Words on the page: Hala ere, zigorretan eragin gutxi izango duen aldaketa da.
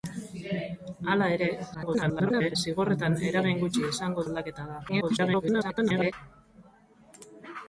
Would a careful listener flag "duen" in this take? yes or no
yes